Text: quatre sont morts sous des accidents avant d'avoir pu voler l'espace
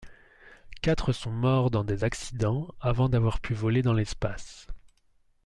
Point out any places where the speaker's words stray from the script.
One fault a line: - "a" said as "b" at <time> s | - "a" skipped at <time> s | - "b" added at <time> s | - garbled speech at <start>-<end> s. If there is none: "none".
- "sous" said as "dans" at 1.7 s
- "dans" added at 3.8 s